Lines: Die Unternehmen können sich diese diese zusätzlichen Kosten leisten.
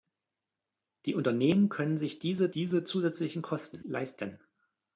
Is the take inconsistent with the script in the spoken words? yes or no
no